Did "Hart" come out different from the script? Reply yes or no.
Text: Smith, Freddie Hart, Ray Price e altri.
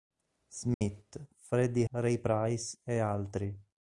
yes